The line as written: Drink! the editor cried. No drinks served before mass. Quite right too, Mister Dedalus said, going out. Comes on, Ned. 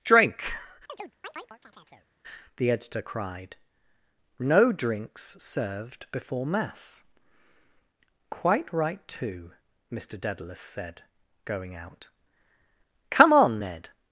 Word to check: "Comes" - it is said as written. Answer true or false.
false